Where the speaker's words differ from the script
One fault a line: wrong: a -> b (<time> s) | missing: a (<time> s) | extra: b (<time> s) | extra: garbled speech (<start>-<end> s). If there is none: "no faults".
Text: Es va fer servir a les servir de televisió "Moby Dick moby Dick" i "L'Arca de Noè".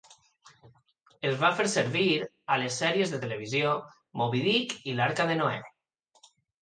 wrong: servir -> sèries (2.8 s)
missing: moby Dick (4.8 s)